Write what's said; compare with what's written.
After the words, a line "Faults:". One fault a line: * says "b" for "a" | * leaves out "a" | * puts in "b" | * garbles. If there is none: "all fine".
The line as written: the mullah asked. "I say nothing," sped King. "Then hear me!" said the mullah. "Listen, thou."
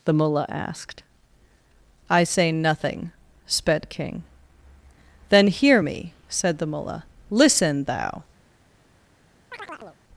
the mullah asked. "I say nothing," sped King. "Then hear me!" said the mullah. "Listen, thou."
Faults:
all fine